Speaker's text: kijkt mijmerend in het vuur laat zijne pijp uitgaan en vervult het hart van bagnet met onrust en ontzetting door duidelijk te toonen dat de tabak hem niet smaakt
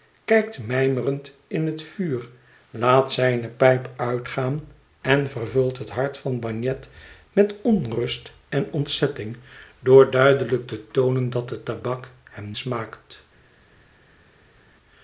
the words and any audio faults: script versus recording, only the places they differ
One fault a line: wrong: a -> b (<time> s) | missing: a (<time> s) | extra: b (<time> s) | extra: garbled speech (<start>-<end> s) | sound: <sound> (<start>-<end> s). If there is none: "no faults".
missing: niet (12.6 s)